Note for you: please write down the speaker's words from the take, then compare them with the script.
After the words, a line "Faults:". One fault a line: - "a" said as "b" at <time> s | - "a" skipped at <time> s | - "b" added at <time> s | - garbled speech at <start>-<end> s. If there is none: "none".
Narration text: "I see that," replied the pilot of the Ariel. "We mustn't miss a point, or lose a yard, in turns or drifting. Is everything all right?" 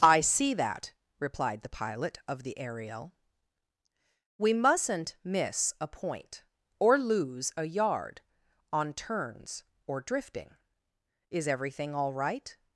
"I see that," replied the pilot of the Ariel. "We mustn't miss a point, or lose a yard, on turns or drifting. Is everything all right?"
Faults:
- "in" said as "on" at 8.7 s